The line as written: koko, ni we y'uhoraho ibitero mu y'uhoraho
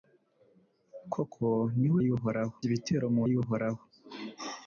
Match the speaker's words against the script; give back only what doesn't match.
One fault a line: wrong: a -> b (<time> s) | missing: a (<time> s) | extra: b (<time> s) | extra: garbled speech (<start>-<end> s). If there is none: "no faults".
no faults